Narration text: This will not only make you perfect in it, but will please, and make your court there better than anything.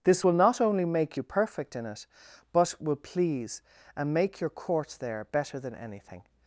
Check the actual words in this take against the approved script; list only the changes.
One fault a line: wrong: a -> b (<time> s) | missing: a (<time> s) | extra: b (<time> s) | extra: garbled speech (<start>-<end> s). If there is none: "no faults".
no faults